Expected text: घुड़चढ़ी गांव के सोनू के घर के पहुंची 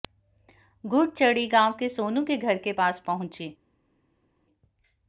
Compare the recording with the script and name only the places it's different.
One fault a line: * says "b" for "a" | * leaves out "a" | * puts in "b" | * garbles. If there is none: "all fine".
* puts in "पास"